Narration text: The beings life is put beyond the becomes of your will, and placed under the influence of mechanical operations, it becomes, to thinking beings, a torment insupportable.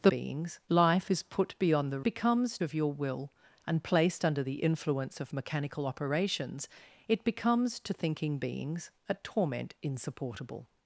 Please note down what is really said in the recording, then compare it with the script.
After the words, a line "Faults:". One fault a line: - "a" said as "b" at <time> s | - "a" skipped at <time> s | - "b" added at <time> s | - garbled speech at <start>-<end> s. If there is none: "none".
The beings life is put beyond the becomes of your will, and placed under the influence of mechanical operations, it becomes, to thinking beings, a torment insupportable.
Faults:
none